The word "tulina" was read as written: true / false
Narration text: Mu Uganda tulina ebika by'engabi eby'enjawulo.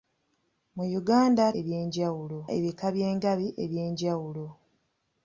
false